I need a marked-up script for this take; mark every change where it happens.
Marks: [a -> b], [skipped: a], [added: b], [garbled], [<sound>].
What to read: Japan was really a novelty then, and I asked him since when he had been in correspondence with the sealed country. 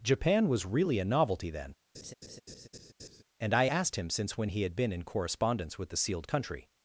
Japan was really a novelty then, [laugh] and I asked him since when he had been in correspondence with the sealed country.